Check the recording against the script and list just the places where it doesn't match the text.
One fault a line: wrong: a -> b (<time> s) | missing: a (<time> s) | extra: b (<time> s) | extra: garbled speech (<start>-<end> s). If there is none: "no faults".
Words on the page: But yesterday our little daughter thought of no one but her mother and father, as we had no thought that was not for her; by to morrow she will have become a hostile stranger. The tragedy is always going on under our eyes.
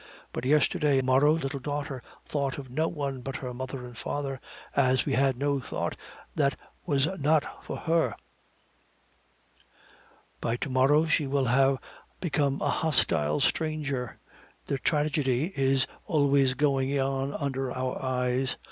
wrong: our -> morrow (1.0 s)